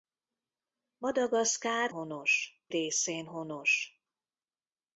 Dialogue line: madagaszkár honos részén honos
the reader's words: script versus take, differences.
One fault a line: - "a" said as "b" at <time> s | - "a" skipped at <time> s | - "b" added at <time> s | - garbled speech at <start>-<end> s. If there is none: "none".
none